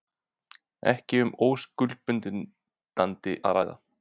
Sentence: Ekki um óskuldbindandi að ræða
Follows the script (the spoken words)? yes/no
yes